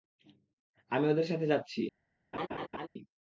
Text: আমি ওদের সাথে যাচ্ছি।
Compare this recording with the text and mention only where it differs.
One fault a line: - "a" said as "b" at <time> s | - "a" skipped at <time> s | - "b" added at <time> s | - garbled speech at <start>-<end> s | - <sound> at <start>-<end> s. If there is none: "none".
- laugh at 2.3-2.9 s